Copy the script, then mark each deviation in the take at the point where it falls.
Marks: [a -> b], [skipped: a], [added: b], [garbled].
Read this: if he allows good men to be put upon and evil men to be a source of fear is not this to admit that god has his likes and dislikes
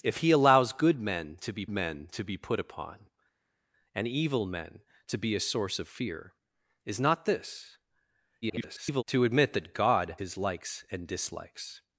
if he allows good men to be [added: men to be] put upon and evil men to be a source of fear is not this [garbled] to admit that god [skipped: has] his likes and dislikes